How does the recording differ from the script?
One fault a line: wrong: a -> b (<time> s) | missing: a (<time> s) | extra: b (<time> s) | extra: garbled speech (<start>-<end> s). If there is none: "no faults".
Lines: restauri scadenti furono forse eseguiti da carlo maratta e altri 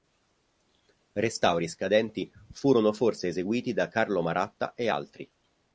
no faults